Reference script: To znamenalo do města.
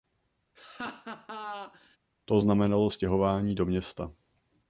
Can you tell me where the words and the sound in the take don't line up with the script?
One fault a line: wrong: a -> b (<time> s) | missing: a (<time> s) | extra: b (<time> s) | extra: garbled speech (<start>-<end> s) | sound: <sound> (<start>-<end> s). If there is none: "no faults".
sound: laugh (0.5-2.0 s)
extra: stěhování (2.9 s)